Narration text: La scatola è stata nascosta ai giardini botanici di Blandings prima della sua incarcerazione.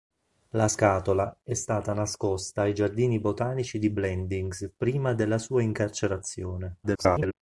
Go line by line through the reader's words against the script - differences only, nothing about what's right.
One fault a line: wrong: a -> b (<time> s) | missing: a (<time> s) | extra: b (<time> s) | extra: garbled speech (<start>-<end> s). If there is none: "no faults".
extra: garbled speech (6.8-7.3 s)